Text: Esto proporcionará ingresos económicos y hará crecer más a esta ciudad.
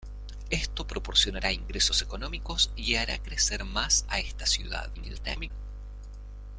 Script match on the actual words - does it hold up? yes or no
no